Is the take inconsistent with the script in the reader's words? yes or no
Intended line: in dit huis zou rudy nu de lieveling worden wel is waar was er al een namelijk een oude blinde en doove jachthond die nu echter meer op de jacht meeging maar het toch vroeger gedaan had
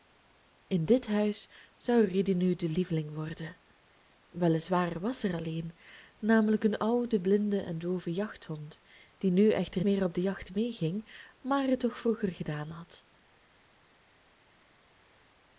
no